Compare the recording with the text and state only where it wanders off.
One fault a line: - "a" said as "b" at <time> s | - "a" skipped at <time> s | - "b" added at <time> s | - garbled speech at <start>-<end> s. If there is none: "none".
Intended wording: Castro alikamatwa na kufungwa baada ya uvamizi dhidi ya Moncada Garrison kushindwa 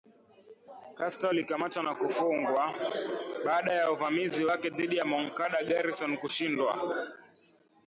- "wake" added at 4.4 s